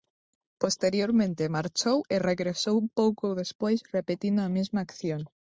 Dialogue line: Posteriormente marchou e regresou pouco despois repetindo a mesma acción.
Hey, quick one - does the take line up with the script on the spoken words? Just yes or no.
yes